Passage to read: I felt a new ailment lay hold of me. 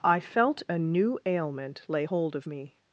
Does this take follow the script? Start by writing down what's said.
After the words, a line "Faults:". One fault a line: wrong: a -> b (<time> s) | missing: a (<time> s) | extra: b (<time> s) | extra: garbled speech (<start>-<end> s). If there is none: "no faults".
I felt a new ailment lay hold of me.
Faults:
no faults